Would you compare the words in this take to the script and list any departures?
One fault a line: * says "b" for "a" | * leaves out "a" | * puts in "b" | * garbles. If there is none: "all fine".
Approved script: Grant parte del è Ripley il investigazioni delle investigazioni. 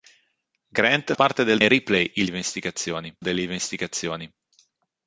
all fine